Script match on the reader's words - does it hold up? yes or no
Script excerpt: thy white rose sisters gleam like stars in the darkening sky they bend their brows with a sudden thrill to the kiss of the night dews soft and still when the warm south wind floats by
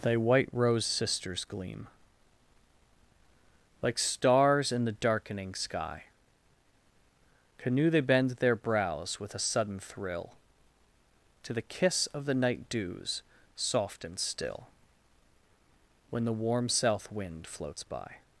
no